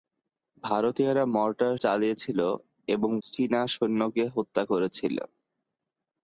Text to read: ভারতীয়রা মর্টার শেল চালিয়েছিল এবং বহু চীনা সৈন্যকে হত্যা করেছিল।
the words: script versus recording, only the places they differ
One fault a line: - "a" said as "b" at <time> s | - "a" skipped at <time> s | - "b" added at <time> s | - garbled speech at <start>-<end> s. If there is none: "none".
- "শেল" skipped at 1.7 s
- "বহু" skipped at 3.1 s